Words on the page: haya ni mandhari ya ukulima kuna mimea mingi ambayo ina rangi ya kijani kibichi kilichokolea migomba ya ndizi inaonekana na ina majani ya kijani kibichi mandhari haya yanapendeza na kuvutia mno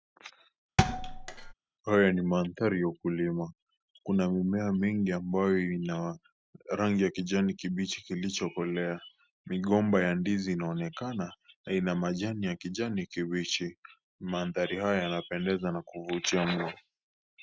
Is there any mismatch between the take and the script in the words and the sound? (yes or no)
yes